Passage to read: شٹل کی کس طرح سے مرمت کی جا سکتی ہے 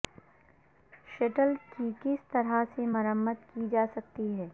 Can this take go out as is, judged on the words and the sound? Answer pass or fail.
pass